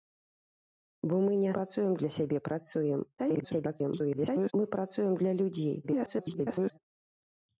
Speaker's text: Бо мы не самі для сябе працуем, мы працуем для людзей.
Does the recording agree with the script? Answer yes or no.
no